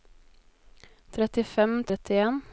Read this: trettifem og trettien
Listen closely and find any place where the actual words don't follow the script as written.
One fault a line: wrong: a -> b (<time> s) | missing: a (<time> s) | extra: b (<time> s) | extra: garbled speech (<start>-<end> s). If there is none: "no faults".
no faults